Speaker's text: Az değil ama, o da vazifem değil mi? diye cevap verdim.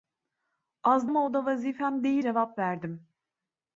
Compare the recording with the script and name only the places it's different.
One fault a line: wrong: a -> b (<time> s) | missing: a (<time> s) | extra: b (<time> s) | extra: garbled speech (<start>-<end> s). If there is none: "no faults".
missing: değil (1.1 s)
missing: mi diye (2.2 s)